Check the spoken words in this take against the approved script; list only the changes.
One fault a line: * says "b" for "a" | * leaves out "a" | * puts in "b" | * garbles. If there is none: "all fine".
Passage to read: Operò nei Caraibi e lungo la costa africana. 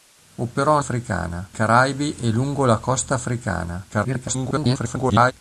* says "africana" for "nei"
* garbles